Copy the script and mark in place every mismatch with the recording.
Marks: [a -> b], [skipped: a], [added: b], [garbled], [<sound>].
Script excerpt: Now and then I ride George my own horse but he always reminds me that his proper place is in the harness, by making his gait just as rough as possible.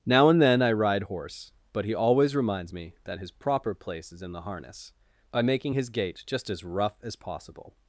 Now and then I ride [skipped: George my own] horse but he always reminds me that his proper place is in the harness, by making his gait just as rough as possible.